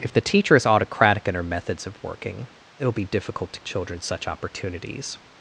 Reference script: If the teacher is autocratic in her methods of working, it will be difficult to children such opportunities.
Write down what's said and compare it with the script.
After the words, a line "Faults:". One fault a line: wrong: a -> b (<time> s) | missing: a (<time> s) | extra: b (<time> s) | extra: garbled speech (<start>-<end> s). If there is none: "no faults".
If the teacher is autocratic in her methods of working, it will be difficult to children such opportunities.
Faults:
no faults